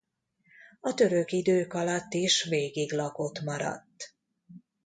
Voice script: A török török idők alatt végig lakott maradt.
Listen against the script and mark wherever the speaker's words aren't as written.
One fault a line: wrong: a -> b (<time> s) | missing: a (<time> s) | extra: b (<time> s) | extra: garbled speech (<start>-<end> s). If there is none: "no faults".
missing: török (1.3 s)
extra: is (2.1 s)